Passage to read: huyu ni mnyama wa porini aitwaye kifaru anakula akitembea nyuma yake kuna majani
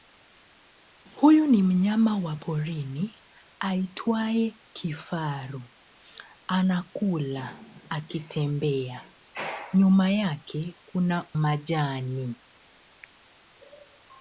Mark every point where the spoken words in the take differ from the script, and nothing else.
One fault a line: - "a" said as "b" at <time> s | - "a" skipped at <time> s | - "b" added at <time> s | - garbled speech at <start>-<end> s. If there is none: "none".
none